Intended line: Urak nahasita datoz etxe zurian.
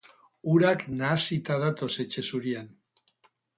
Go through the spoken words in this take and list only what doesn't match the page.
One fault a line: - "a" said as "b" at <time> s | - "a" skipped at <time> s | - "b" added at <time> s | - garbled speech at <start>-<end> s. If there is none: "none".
none